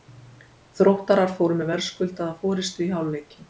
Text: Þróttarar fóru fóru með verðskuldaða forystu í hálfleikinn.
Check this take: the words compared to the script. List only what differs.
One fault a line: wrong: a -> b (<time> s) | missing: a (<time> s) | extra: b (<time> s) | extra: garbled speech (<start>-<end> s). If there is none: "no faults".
missing: fóru (1.6 s)